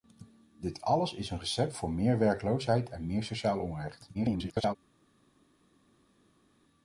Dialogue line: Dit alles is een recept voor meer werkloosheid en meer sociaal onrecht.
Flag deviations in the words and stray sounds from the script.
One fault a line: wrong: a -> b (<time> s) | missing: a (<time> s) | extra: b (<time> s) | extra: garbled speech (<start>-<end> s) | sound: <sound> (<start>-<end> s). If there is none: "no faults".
extra: garbled speech (4.1-4.8 s)